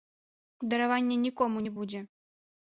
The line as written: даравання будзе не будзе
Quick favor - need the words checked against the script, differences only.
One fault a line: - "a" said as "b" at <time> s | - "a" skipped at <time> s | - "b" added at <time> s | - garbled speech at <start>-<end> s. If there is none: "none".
- "будзе" said as "нікому" at 1.3 s